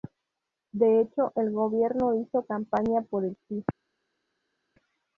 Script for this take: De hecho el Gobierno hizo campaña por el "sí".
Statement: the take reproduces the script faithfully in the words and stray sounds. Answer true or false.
true